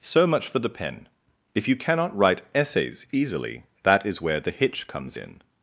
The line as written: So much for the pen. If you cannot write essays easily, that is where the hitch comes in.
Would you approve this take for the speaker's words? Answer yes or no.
yes